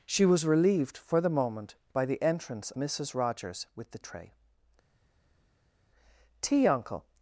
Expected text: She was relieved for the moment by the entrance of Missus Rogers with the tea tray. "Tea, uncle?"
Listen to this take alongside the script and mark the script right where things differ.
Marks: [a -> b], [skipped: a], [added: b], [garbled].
She was relieved for the moment by the entrance [skipped: of] Missus Rogers with the [skipped: tea] tray. "Tea, uncle?"